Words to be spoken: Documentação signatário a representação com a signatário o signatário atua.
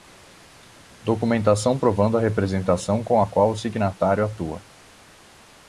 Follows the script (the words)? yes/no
no